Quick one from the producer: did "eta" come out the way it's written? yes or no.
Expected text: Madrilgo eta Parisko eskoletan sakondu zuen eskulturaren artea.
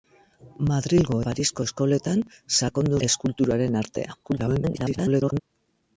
no